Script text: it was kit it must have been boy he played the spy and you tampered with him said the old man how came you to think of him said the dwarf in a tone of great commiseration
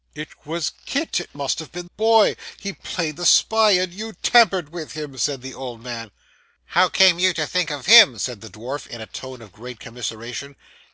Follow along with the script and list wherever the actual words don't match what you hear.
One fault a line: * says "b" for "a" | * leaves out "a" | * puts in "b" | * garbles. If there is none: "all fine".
all fine